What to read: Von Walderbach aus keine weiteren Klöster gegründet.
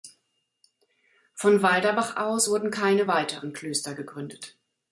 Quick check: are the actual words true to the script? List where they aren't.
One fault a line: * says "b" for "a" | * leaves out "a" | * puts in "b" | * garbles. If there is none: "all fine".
* puts in "wurden"